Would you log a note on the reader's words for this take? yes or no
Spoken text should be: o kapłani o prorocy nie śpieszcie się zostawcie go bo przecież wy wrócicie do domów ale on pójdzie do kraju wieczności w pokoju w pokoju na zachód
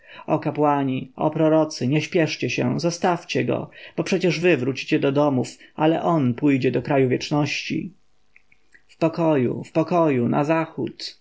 no